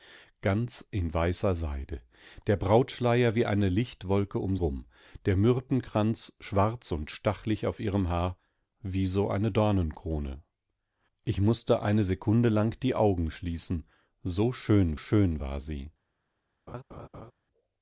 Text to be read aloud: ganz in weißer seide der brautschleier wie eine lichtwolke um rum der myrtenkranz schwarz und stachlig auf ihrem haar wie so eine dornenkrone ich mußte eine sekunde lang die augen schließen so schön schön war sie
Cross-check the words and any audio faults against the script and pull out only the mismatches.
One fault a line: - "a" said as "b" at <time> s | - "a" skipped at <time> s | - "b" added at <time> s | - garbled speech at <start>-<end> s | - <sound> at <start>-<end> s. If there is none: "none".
- laugh at 16.7-17.3 s